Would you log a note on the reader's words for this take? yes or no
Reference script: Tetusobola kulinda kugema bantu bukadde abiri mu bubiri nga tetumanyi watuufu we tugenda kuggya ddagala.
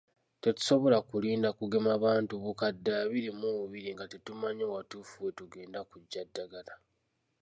no